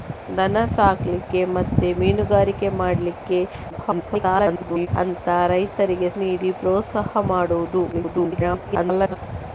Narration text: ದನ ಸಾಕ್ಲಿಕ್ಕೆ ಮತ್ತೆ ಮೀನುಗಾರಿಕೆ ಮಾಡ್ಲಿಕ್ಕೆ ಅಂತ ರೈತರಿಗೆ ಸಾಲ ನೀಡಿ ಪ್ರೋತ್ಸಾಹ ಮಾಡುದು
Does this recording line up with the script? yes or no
no